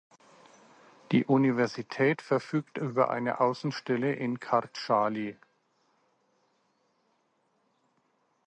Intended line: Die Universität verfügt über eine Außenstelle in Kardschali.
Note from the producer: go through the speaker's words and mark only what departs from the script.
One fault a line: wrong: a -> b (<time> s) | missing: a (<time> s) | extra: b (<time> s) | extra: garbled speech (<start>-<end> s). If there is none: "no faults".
no faults